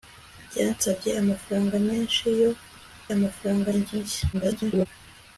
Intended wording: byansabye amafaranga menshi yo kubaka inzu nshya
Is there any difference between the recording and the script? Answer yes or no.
yes